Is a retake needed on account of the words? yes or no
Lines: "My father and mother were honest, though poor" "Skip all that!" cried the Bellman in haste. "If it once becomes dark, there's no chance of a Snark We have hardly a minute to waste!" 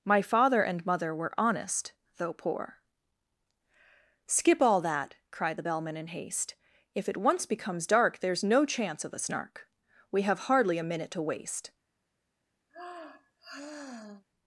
no